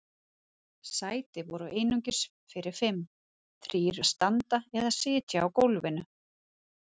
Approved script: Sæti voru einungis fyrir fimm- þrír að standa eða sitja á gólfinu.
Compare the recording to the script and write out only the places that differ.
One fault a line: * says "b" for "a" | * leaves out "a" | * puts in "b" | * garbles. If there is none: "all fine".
all fine